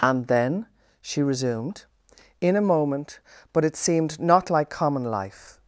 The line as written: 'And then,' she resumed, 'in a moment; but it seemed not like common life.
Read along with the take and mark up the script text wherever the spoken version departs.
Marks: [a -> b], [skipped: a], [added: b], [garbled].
'And then,' she resumed, 'in a moment; but it seemed not like common life.